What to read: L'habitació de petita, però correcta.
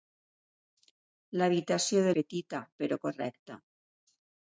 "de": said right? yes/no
yes